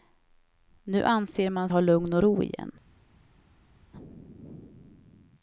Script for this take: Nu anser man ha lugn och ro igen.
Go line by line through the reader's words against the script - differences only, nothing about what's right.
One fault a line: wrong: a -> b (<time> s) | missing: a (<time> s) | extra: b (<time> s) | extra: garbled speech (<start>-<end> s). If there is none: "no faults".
no faults